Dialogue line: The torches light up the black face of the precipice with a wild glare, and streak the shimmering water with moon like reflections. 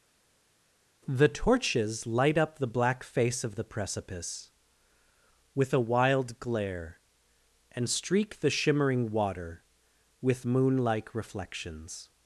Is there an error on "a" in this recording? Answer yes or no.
no